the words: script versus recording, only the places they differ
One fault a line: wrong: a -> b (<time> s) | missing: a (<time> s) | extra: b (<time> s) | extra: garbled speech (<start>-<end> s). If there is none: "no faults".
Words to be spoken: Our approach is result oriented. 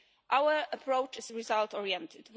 no faults